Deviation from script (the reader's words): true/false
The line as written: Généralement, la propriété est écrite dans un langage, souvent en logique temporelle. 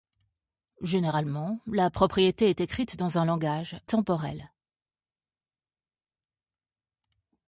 true